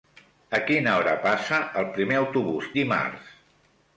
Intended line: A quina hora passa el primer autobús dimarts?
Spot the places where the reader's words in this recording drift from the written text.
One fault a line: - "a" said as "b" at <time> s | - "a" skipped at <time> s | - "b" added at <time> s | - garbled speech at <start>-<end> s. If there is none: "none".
none